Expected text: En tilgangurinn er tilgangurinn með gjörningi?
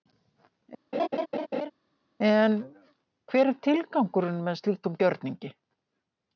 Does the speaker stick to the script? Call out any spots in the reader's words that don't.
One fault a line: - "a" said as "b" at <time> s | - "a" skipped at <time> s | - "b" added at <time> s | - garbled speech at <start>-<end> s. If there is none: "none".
- "tilgangurinn" said as "hver" at 3.3 s
- "slíkum" added at 4.6 s